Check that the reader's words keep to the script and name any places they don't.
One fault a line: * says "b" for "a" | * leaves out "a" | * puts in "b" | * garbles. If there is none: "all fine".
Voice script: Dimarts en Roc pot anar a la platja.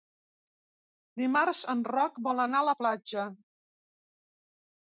* says "vol" for "pot"